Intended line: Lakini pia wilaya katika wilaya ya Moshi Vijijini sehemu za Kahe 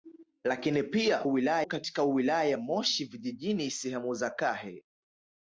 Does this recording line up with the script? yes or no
yes